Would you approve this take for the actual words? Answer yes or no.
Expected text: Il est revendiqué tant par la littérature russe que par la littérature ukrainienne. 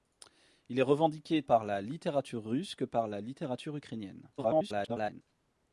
no